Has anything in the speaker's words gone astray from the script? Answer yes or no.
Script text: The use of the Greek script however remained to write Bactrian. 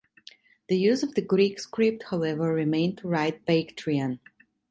no